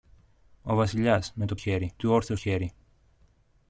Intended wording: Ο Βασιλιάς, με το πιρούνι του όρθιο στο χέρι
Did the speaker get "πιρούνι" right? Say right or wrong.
wrong